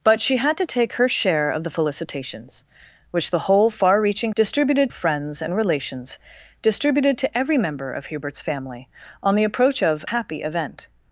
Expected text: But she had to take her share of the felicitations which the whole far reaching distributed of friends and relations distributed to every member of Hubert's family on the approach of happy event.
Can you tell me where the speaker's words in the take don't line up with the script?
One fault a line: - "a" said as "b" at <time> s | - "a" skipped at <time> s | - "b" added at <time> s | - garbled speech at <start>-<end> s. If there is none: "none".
none